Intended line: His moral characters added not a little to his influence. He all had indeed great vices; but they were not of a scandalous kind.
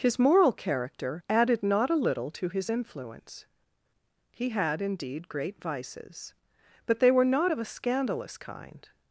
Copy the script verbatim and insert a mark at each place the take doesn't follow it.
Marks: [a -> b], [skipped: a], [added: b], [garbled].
His moral [characters -> character] added not a little to his influence. He [skipped: all] had indeed great vices; but they were not of a scandalous kind.